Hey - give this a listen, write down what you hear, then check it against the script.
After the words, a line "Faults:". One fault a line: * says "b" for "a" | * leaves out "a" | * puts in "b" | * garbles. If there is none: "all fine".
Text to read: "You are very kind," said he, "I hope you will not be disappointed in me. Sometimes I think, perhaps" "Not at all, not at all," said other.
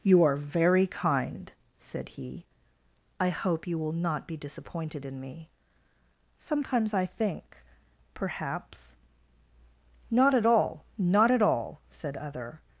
"You are very kind," said he, "I hope you will not be disappointed in me. Sometimes I think, perhaps" "Not at all, not at all," said other.
Faults:
all fine